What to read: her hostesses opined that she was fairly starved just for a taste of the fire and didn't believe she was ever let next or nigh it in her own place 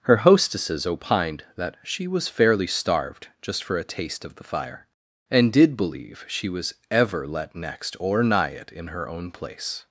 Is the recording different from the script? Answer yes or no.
yes